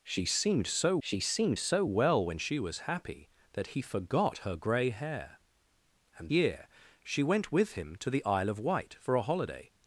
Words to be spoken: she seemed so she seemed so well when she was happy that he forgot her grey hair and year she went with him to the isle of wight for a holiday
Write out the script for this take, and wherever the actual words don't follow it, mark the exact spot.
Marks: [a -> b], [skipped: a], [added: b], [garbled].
she seemed so she seemed so well when she was happy that he forgot her grey hair and year she went with him to the isle of wight for a holiday